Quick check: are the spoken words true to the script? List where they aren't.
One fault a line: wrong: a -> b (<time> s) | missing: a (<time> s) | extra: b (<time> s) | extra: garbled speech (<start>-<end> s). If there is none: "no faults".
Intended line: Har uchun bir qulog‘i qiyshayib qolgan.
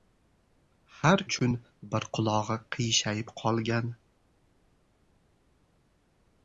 no faults